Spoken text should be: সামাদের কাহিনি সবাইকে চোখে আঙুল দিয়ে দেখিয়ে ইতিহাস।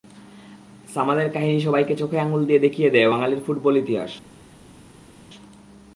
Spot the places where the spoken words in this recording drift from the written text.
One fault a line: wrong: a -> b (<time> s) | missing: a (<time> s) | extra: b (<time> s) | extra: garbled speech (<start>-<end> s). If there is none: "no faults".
extra: দেয় বাঙালির ফুটবল (2.9 s)